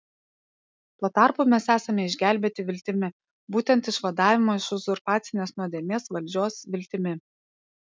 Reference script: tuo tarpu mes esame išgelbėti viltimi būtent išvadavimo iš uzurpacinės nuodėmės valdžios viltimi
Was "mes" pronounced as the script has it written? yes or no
yes